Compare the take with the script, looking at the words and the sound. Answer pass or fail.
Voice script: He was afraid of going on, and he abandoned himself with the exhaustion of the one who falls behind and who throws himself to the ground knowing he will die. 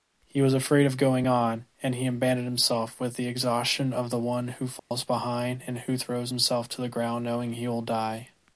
fail